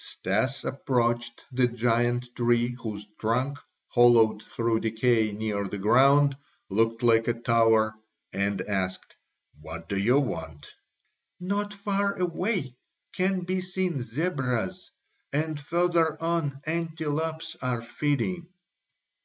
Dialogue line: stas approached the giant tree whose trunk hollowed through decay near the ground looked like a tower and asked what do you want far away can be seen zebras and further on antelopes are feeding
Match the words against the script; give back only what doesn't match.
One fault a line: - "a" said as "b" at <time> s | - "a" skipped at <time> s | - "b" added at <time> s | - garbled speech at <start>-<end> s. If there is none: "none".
- "not" added at 11.4 s